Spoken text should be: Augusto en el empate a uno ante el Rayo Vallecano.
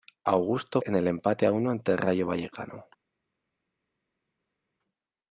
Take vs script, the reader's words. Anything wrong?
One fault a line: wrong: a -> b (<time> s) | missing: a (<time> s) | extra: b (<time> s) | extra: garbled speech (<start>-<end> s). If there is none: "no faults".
no faults